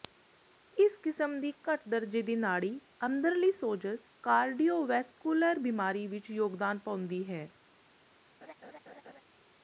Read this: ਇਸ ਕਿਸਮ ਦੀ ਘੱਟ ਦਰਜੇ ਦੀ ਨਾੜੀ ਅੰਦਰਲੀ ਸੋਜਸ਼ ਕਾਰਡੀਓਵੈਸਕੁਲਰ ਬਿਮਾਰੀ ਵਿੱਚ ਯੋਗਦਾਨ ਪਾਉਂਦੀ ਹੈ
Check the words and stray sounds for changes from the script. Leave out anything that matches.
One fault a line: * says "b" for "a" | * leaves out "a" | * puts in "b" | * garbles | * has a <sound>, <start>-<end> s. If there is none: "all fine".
* has a laugh, 8.4-9.2 s